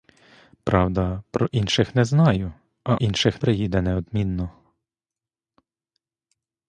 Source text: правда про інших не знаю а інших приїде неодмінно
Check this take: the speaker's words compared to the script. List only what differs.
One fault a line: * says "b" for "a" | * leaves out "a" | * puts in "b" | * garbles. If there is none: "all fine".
all fine